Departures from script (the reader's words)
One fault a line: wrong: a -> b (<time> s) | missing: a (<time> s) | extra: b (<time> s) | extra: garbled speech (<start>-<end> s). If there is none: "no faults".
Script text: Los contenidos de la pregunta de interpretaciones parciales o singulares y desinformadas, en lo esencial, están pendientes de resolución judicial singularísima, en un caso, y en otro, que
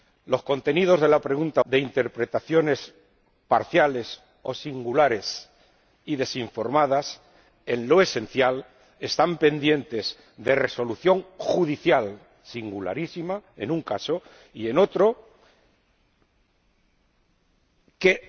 no faults